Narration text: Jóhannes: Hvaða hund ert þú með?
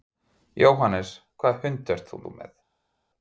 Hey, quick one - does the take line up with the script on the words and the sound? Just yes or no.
no